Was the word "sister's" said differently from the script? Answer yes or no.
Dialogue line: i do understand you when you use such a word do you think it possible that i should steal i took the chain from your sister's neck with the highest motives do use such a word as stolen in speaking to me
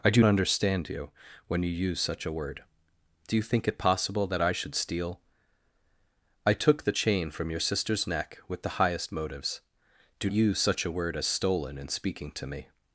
no